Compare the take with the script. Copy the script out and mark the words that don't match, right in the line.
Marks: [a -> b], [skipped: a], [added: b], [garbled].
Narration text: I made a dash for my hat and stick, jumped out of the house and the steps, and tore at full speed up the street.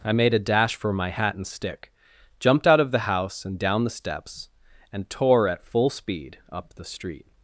I made a dash for my hat and stick, jumped out of the house and [added: down] the steps, and tore at full speed up the street.